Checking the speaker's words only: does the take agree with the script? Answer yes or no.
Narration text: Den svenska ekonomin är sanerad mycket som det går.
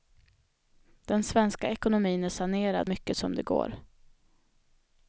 yes